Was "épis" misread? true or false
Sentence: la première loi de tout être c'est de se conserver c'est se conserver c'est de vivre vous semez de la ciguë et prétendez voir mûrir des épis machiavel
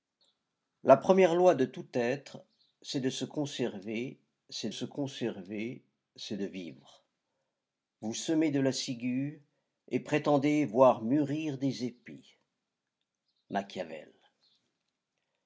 false